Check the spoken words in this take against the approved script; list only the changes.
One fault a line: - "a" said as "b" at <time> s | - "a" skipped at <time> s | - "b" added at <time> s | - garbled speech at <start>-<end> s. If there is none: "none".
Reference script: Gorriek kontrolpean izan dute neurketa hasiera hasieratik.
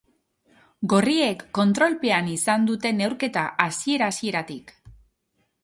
none